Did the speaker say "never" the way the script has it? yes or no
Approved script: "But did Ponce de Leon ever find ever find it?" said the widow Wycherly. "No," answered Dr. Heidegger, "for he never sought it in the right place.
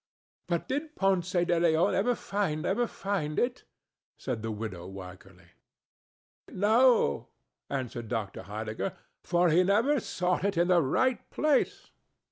yes